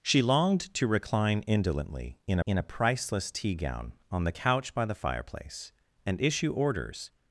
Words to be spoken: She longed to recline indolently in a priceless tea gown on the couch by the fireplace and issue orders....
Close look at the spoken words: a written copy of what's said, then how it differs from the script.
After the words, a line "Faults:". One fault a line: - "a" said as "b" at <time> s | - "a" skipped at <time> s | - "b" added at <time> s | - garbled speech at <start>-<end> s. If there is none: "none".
She longed to recline indolently in in a priceless tea gown on the couch by the fireplace and issue orders....
Faults:
- "in" added at 2.5 s